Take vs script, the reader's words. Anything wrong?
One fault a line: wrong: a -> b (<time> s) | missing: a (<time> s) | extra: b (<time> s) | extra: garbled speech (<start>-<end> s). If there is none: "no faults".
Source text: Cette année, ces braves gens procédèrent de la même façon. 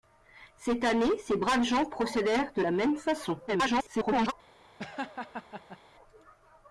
extra: garbled speech (3.5-4.3 s)